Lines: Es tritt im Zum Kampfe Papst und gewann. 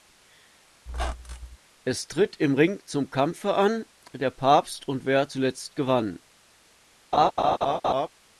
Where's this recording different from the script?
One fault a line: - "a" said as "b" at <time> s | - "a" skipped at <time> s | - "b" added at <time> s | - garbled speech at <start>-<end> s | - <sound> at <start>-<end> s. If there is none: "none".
- squeak at 0.9-1.6 s
- "Ring" added at 2.5 s
- "an Der" added at 3.5 s
- "wer zuletzt" added at 5.0 s
- laugh at 7.1-8.1 s